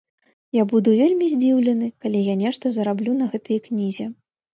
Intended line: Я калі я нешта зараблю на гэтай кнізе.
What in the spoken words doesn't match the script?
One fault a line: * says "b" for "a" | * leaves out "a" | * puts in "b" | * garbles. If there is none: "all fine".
* puts in "буду вельмі здзіўлены"